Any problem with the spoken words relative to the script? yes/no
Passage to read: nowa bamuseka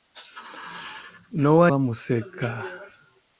no